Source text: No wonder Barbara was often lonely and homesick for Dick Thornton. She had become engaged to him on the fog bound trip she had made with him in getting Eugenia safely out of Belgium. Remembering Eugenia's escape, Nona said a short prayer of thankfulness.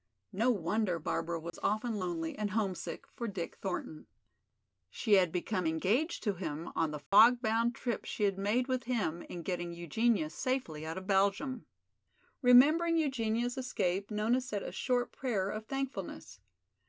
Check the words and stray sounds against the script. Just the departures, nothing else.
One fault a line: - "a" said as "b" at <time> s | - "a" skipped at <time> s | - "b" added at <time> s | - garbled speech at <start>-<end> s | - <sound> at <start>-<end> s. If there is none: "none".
- dropout at 1.5-1.5 s
- dropout at 7.1-7.1 s